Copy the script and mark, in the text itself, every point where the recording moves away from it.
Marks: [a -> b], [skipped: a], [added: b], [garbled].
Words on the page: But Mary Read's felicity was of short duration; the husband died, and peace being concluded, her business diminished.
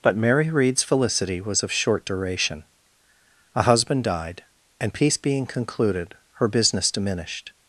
But Mary Read's felicity was of short duration; [the -> a] husband died, and peace being concluded, her business diminished.